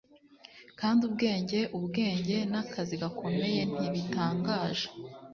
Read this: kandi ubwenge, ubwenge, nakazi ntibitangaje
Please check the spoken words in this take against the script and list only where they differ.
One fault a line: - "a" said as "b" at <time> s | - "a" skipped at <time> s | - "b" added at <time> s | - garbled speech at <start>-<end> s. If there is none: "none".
- "gakomeye" added at 3.0 s